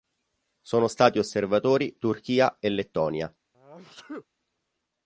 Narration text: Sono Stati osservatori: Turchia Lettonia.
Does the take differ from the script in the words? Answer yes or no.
yes